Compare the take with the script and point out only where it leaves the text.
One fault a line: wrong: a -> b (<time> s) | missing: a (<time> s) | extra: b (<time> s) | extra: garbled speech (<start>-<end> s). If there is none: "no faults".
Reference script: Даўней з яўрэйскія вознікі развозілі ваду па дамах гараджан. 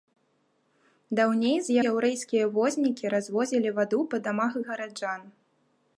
no faults